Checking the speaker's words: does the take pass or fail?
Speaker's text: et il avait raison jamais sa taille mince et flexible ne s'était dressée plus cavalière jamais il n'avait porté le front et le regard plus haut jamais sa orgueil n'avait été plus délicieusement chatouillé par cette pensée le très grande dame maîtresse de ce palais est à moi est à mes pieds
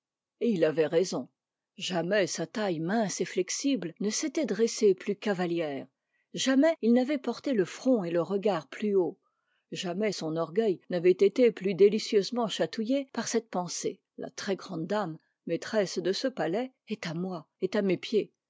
fail